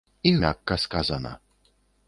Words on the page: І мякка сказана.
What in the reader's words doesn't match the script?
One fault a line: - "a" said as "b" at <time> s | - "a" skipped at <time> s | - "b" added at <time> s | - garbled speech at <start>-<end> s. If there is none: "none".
none